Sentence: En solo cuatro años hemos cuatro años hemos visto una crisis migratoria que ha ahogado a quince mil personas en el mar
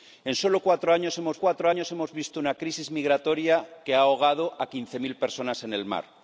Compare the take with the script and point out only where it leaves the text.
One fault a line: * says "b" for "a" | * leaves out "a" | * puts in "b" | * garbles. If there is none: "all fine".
all fine